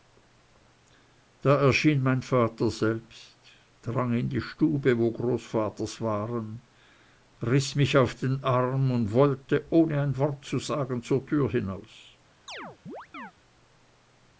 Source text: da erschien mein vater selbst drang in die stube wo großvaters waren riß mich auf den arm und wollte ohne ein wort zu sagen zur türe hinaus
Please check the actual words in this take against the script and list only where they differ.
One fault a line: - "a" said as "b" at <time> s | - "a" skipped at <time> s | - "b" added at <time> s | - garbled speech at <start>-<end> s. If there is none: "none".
none